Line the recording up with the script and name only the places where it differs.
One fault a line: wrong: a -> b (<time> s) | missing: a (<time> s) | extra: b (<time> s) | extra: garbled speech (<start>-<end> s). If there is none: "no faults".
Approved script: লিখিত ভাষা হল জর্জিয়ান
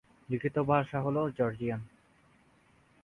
no faults